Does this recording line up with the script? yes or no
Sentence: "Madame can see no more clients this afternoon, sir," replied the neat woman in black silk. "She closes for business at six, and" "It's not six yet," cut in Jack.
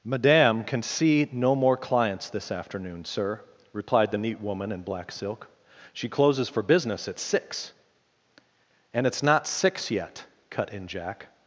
yes